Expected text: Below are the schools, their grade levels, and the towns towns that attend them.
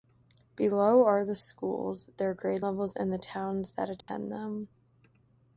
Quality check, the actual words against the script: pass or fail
fail